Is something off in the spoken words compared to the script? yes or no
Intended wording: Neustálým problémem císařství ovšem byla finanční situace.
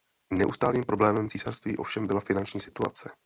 no